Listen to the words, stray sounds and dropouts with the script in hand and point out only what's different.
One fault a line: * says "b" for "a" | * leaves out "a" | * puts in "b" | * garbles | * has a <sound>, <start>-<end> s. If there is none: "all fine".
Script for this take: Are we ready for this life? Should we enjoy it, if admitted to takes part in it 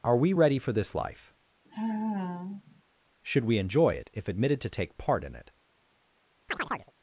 * has a sigh, 1.6-2.8 s
* says "take" for "takes"
* has a chirp, 6.5-6.9 s